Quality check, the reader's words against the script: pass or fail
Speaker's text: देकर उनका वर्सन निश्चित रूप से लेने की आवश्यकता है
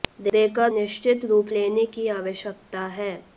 fail